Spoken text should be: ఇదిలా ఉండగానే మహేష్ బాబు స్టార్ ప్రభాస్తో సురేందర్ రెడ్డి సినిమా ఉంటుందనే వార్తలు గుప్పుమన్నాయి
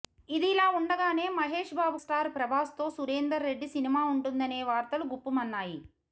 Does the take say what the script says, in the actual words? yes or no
yes